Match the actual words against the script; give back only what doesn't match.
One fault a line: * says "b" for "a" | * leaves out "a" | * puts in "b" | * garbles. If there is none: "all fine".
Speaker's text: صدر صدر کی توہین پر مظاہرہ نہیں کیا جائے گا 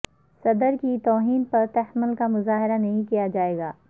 * leaves out "صدر"
* puts in "تحمل کا"